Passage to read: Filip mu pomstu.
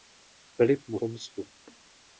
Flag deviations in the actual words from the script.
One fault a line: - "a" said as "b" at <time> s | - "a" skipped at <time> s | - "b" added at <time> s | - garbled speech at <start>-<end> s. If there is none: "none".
none